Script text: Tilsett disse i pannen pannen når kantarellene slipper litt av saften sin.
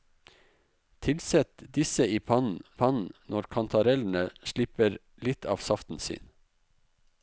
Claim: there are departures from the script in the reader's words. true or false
false